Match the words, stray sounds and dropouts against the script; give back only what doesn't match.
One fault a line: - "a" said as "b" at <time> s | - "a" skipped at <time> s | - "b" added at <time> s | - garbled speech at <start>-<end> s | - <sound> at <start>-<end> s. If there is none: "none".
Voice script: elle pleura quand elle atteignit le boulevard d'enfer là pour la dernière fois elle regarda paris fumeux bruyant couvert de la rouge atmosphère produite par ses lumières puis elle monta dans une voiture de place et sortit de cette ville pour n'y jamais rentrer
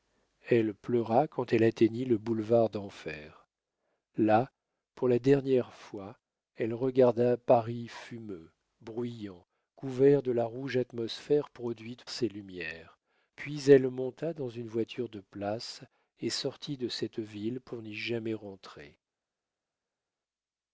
- "par" skipped at 12.1 s